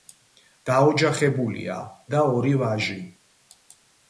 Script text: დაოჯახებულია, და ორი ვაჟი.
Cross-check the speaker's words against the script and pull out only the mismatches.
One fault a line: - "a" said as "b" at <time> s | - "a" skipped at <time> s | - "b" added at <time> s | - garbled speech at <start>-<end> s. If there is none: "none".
none